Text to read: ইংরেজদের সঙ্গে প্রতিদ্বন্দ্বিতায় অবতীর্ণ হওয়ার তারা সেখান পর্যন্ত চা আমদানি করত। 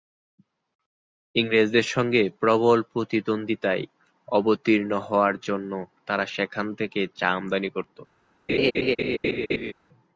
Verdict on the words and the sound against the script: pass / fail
fail